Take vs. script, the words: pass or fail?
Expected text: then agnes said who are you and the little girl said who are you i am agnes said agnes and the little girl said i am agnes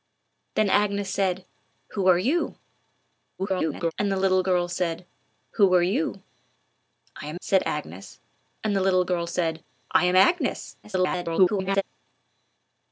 fail